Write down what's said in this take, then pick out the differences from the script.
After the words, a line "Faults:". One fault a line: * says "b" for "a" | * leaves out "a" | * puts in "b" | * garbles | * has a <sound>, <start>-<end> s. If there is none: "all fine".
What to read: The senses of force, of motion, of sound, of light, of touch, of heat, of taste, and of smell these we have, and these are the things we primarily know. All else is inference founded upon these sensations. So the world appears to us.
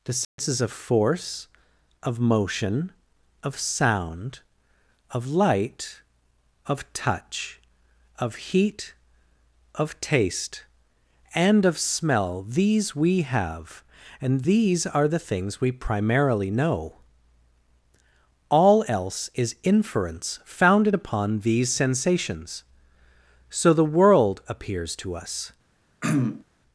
The senses of force, of motion, of sound, of light, of touch, of heat, of taste, and of smell these we have, and these are the things we primarily know. All else is inference founded upon these sensations. So the world appears to us.
Faults:
* has a dropout, 0.2-0.4 s
* has a throat clearing, 26.0-26.4 s